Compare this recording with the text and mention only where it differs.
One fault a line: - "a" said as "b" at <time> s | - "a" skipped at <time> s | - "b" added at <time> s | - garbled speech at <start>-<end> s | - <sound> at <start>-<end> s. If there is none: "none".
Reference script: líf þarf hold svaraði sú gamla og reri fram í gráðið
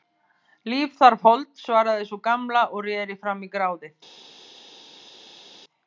none